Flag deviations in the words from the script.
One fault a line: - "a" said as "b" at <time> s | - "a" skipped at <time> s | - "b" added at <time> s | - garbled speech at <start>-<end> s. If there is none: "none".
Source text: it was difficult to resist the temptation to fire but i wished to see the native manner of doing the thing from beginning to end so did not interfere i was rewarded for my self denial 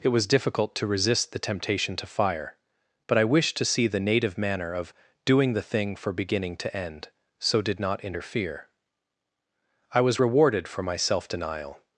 - "from" said as "for" at 6.0 s